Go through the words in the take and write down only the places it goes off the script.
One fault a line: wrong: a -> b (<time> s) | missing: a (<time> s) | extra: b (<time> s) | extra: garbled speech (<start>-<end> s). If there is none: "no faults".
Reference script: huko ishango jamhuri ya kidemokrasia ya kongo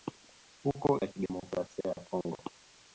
missing: ishango jamhuri (1.0 s)